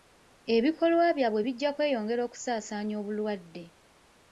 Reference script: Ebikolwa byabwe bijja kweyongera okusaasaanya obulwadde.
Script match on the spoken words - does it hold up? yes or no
yes